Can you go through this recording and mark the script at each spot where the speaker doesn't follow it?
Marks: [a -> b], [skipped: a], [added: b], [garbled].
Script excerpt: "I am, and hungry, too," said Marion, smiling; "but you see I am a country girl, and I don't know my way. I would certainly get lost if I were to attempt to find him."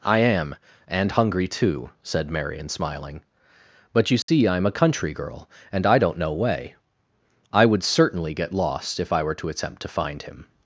"I am, and hungry, too," said Marion, smiling; "but you see I am a country girl, and I don't know [skipped: my] way. I would certainly get lost if I were to attempt to find him."